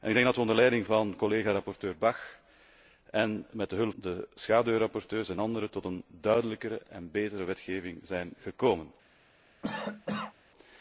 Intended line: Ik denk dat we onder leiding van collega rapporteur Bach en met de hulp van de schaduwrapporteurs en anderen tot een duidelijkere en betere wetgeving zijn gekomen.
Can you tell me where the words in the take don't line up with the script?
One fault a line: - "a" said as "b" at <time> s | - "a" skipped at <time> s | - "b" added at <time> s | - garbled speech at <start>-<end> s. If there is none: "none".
- "van" skipped at 3.9 s